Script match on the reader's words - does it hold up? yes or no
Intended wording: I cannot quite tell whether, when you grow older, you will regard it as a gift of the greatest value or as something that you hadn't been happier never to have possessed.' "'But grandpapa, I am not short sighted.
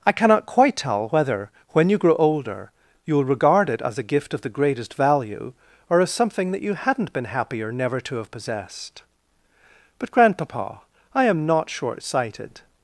yes